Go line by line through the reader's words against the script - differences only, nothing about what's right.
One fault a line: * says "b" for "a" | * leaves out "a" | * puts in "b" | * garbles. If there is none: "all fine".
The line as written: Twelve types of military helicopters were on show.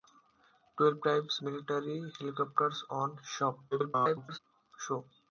* leaves out "of"
* leaves out "were"
* garbles